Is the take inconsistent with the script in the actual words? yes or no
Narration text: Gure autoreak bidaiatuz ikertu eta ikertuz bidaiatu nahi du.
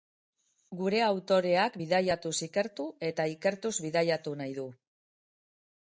no